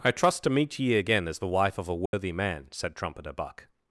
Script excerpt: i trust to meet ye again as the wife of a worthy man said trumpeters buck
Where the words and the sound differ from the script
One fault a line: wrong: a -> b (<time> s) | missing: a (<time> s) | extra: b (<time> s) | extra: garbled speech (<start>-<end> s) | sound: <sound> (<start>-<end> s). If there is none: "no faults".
sound: dropout (2.1-2.1 s)
wrong: trumpeters -> trumpeter (3.0 s)